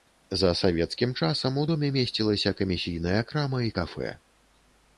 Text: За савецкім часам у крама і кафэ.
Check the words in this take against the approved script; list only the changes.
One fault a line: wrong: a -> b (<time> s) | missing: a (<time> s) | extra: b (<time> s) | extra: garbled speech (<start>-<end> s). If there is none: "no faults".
extra: доме месцілася камісійная (1.7 s)